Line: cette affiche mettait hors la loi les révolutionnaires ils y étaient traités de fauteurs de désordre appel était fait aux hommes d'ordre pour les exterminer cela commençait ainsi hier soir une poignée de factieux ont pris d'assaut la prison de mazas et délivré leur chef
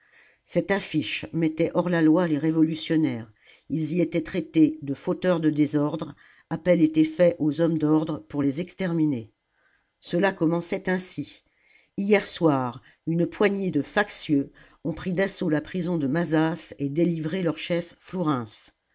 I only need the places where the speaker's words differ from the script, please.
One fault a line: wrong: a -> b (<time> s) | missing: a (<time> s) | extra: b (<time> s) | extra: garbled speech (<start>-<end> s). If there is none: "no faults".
no faults